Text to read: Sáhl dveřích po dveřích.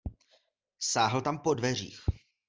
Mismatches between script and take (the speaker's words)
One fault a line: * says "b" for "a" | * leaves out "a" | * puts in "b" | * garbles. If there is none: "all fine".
* says "tam" for "dveřích"